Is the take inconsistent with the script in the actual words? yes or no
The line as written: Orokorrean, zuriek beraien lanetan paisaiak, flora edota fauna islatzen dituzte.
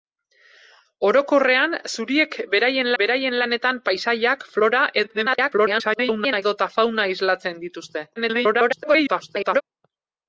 yes